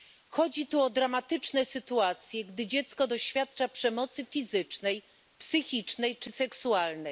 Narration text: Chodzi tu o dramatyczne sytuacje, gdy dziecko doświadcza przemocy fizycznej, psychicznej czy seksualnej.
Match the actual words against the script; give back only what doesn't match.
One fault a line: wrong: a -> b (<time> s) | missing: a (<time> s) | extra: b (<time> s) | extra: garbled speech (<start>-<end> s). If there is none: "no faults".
no faults